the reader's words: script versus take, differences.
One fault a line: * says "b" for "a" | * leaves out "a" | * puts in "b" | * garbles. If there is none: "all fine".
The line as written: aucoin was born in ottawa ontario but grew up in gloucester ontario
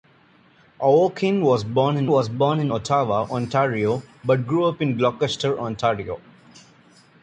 * puts in "was born in"